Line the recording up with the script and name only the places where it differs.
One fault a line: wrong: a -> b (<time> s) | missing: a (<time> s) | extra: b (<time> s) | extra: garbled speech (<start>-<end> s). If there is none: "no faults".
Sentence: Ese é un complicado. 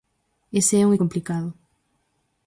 no faults